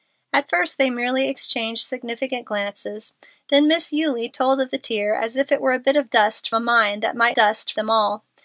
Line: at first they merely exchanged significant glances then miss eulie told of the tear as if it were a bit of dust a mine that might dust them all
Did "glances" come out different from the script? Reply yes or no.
no